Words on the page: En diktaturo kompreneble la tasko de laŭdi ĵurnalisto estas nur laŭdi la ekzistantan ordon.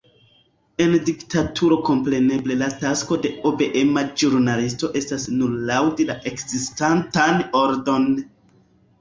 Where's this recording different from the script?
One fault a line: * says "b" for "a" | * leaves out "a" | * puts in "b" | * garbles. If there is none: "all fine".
* says "obeema" for "laŭdi"